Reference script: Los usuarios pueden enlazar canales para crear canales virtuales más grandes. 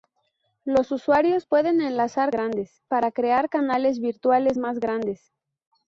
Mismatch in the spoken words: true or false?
true